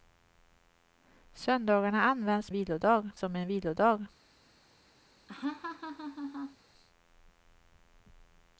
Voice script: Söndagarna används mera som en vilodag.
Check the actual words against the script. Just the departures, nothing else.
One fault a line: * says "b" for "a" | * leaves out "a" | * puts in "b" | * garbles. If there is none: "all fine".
* says "vilodag" for "mera"